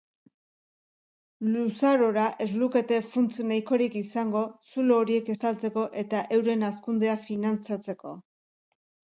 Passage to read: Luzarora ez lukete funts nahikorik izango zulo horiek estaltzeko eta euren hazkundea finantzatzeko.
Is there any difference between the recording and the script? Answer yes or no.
no